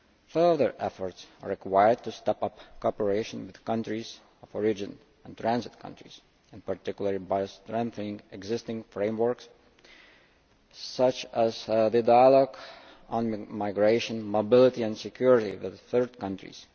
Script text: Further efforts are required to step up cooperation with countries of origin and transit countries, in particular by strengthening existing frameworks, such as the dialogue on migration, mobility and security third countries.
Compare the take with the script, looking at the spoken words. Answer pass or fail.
fail